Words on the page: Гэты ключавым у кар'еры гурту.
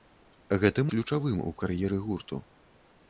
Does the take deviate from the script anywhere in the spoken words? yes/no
no